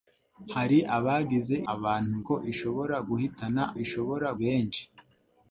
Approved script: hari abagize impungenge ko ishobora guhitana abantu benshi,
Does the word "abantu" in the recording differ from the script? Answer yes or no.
yes